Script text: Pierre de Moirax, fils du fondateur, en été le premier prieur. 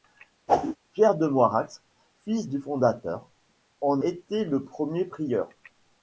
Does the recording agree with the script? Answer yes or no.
yes